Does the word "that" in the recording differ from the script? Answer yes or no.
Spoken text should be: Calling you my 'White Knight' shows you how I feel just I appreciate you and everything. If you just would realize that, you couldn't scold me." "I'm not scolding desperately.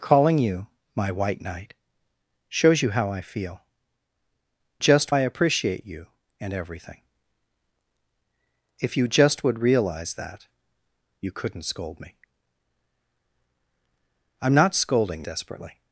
no